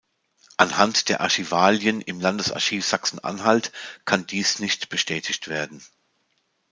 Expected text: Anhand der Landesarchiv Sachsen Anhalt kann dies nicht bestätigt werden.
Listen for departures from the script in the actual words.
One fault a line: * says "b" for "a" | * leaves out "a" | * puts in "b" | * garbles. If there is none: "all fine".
* puts in "Archivalien im"